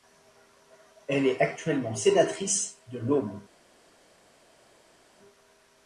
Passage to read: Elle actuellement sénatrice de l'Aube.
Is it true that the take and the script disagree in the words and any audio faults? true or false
true